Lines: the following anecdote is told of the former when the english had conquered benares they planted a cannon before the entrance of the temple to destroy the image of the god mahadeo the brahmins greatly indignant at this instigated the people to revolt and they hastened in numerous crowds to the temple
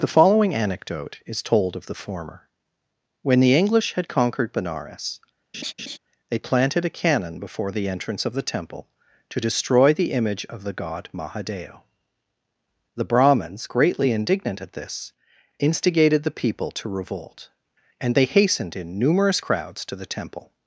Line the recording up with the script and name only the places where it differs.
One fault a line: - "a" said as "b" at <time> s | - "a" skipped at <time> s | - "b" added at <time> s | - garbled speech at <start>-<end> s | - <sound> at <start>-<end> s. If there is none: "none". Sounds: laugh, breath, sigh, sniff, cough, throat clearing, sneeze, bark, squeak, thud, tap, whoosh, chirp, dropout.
- laugh at 5.5-6.0 s